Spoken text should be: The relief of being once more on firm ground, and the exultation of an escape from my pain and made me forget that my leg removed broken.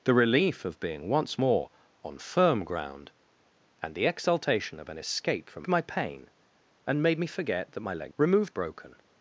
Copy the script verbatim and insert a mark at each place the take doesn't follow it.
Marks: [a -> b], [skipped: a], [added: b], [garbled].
The relief of being once more on firm ground, and the exultation of an escape from my pain and made me forget that my leg removed broken.